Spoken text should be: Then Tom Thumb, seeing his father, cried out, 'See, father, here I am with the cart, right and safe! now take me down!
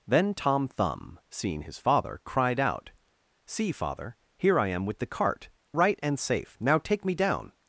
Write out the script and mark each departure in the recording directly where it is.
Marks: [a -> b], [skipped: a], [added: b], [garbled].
Then Tom Thumb, seeing his father, cried out, 'See, father, here I am with the cart, right and safe! now take me down!